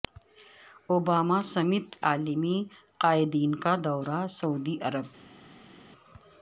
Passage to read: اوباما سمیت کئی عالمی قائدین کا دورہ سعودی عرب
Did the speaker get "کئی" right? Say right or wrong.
wrong